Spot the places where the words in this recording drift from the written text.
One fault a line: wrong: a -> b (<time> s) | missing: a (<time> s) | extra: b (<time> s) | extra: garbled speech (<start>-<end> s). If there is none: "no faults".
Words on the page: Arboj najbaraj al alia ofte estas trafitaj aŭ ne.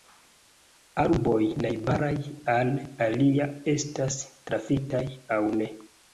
missing: ofte (3.5 s)